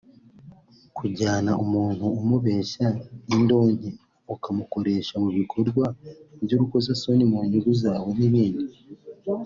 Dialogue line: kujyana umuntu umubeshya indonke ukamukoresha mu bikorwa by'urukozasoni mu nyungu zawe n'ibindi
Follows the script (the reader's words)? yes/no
yes